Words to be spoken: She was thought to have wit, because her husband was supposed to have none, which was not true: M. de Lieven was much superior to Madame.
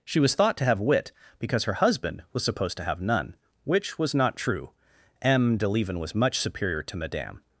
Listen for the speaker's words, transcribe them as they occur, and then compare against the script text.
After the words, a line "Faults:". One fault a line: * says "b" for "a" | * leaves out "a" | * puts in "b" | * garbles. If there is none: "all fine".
She was thought to have wit, because her husband was supposed to have none, which was not true: M. de Lieven was much superior to Madame.
Faults:
all fine